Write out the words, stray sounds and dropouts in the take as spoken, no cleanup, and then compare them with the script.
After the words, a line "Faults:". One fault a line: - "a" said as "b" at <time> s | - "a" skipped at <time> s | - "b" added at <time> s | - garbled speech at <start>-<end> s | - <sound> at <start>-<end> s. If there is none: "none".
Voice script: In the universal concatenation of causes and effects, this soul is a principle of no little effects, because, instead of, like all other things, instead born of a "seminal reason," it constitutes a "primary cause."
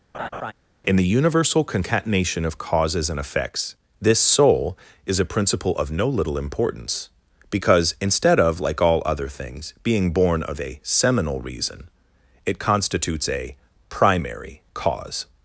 In the universal concatenation of causes and effects, this soul is a principle of no little importance, because, instead of, like all other things, being born of a "seminal reason," it constitutes a "primary cause."
Faults:
- laugh at 0.1-0.5 s
- "effects" said as "importance" at 6.4 s
- "instead" said as "being" at 9.8 s